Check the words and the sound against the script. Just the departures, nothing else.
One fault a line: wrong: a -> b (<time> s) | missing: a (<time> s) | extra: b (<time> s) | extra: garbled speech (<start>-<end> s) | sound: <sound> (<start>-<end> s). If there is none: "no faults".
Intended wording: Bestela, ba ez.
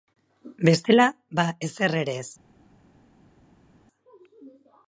extra: ezer ere (1.7 s)